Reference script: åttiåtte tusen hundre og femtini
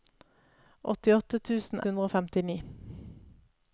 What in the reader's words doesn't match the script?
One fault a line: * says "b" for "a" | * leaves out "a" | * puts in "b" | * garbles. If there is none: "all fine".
all fine